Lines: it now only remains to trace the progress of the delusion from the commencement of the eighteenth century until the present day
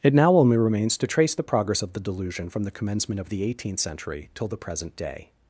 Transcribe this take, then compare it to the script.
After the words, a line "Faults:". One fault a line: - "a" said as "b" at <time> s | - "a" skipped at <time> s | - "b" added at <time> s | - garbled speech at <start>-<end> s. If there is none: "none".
it now only remains to trace the progress of the delusion from the commencement of the eighteenth century till the present day
Faults:
- "until" said as "till" at 4.3 s